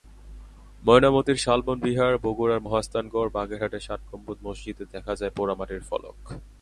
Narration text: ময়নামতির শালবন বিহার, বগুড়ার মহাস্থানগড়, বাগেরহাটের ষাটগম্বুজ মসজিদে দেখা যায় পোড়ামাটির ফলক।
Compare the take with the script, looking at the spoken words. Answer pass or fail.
pass